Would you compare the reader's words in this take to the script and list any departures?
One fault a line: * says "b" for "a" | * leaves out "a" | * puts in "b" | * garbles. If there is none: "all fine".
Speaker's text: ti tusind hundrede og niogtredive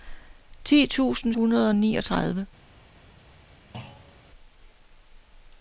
all fine